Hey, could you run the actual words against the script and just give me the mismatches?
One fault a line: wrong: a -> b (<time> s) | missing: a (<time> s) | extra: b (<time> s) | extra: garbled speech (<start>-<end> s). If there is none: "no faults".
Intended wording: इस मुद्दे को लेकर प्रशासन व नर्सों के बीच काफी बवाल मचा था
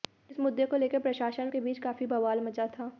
missing: व नर्सों (1.5 s)